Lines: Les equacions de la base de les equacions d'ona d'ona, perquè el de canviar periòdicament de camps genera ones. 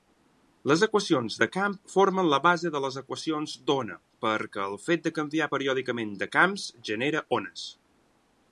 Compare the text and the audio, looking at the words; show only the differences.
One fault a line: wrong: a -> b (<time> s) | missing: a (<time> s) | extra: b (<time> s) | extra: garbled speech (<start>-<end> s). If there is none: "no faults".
extra: camp formen (1.6 s)
missing: d'ona (4.0 s)
extra: fet (4.9 s)